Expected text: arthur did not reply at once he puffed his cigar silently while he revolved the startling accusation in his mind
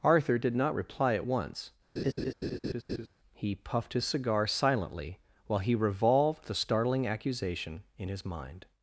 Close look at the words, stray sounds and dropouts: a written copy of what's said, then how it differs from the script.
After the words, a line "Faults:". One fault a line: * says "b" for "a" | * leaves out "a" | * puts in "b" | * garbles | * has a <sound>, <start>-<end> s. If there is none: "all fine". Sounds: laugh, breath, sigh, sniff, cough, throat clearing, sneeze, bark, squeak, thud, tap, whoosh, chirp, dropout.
arthur did not reply at once he puffed his cigar silently while he revolved the startling accusation in his mind
Faults:
* has a laugh, 2.0-3.1 s